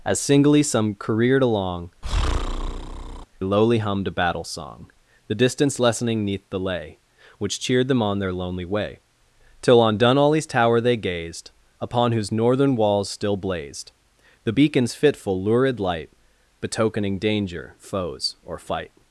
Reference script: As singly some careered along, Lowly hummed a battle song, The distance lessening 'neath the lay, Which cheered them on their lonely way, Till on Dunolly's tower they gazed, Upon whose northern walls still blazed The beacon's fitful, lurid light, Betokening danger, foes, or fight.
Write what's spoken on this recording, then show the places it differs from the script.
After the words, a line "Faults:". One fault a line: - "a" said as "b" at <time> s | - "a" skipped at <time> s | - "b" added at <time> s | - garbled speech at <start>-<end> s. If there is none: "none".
As singly some careered along, Lowly hummed a battle song, The distance lessening 'neath the lay, Which cheered them on their lonely way, Till on Dunolly's tower they gazed, Upon whose northern walls still blazed The beacon's fitful, lurid light, Betokening danger, foes, or fight.
Faults:
none